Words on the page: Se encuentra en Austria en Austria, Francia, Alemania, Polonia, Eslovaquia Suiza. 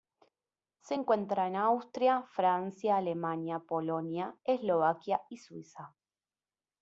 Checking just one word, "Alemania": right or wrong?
right